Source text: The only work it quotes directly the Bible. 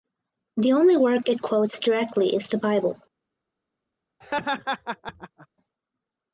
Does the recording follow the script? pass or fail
fail